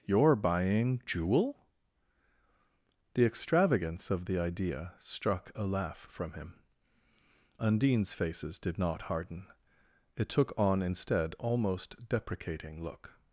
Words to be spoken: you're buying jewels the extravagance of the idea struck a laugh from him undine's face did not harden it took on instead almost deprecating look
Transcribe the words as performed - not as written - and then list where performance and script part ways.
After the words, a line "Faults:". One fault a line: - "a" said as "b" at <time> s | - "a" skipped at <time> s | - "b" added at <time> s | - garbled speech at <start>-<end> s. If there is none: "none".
you're buying jewel the extravagance of the idea struck a laugh from him undine's faces did not harden it took on instead almost deprecating look
Faults:
- "jewels" said as "jewel" at 1.1 s
- "face" said as "faces" at 8.1 s